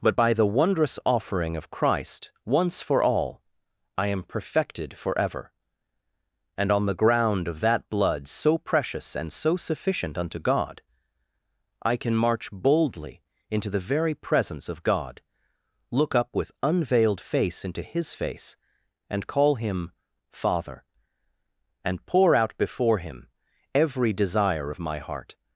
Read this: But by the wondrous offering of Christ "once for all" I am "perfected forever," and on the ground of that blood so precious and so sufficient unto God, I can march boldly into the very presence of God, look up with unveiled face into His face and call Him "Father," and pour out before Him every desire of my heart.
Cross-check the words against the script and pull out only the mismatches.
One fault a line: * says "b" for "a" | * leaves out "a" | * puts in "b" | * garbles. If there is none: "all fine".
all fine